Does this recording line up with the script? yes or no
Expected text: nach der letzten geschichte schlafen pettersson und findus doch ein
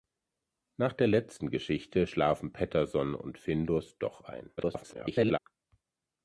no